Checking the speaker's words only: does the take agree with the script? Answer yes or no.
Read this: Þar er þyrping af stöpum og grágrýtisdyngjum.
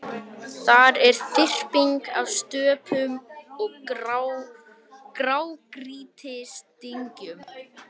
yes